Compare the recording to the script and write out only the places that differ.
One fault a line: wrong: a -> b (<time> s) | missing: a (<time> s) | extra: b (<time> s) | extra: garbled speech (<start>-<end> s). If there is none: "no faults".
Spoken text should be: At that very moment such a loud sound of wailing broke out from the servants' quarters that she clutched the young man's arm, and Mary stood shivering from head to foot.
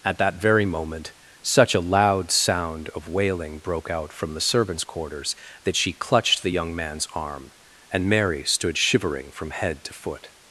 no faults